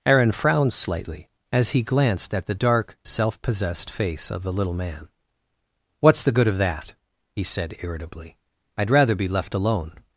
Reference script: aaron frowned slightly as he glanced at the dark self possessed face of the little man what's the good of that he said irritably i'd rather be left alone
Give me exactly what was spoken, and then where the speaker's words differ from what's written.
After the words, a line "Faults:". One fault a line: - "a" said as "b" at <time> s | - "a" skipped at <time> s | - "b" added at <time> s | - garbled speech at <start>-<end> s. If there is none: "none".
aaron frowned slightly as he glanced at the dark self possessed face of the little man what's the good of that he said irritably i'd rather be left alone
Faults:
none